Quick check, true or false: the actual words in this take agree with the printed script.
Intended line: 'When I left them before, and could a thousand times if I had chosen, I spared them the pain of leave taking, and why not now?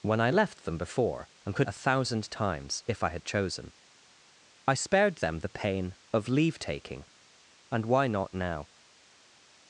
true